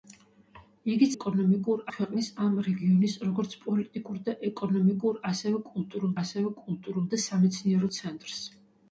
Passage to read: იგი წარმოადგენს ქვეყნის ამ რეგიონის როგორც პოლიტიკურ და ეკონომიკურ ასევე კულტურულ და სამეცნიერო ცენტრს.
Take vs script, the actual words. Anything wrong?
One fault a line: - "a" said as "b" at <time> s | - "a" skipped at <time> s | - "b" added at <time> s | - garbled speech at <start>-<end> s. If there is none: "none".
- "წარმოადგენს" said as "ეკონომიკურ" at 1.2 s
- "ასევე კულტურულ" added at 6.2 s